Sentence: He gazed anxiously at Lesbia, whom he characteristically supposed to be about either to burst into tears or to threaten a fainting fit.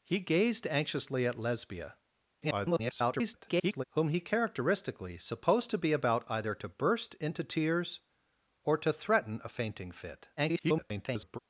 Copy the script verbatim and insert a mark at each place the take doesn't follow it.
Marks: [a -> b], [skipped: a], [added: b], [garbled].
He gazed anxiously at Lesbia, [garbled] whom he characteristically supposed to be about either to burst into tears or to threaten a fainting fit. [garbled]